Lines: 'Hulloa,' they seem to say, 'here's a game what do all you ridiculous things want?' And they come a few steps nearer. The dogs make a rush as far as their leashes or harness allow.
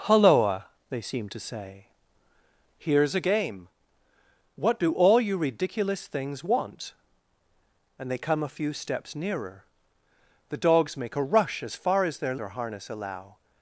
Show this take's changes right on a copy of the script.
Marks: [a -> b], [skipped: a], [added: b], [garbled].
'Hulloa,' they seem to say, 'here's a game what do all you ridiculous things want?' And they come a few steps nearer. The dogs make a rush as far as their [skipped: leashes] or harness allow.